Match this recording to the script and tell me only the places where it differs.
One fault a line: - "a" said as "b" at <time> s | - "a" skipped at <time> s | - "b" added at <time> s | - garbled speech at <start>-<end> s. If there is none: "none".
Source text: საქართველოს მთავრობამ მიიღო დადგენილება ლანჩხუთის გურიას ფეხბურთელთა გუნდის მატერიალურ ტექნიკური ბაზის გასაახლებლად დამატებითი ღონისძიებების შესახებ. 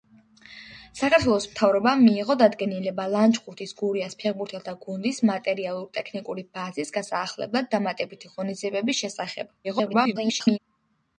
- garbled speech at 9.6-10.6 s